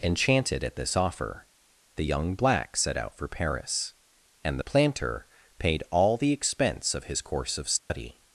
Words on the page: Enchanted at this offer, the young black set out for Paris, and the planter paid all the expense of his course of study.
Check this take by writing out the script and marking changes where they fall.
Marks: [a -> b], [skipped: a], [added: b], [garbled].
Enchanted at this offer, the young black set out for Paris, and the planter paid all the expense of his course of study.